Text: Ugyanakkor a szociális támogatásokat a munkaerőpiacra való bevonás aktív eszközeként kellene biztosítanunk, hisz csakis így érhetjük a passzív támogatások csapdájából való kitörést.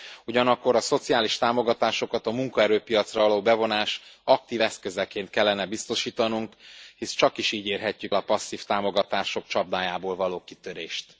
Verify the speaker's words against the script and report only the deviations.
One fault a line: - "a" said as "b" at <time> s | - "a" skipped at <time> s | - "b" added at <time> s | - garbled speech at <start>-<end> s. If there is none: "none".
none